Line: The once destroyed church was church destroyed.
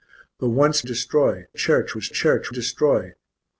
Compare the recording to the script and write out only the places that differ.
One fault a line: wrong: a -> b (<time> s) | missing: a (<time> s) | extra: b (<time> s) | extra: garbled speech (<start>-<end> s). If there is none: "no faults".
no faults